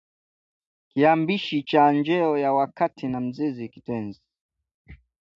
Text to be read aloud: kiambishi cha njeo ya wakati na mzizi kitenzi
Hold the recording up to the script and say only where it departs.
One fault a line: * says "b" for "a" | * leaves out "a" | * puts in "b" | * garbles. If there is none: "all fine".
all fine